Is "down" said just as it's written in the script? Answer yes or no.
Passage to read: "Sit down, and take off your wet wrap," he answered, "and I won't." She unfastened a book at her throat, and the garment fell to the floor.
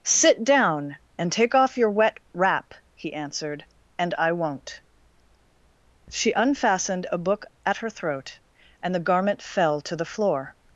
yes